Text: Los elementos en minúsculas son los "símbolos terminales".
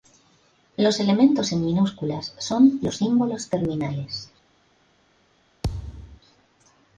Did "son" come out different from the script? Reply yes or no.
no